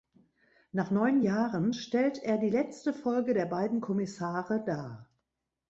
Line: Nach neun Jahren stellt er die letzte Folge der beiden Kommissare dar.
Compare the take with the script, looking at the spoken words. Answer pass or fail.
pass